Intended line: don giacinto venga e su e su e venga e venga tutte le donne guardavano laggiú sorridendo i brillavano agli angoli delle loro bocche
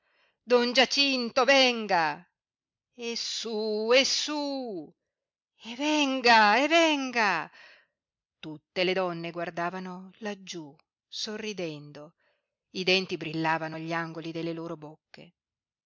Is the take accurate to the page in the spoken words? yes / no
no